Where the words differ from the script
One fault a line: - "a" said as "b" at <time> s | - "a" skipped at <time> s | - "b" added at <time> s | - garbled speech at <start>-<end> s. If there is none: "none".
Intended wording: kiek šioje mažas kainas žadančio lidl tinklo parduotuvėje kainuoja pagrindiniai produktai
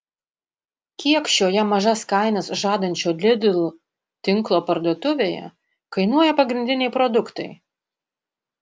none